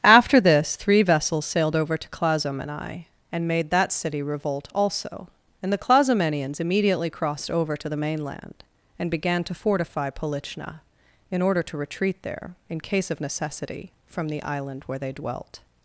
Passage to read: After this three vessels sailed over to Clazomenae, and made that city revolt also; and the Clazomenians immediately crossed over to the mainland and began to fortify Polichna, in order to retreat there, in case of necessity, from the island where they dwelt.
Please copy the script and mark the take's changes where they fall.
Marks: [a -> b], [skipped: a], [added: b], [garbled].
After this three vessels sailed over to Clazomenae, and made that city revolt also; and the Clazomenians immediately crossed over to the mainland and began to fortify Polichna, in order to retreat there, in case of necessity, from the island where they dwelt.